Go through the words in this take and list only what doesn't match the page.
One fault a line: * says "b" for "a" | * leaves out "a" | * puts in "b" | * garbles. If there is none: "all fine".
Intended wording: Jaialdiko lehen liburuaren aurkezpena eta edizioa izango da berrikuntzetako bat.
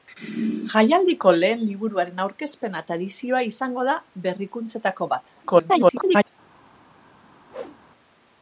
* garbles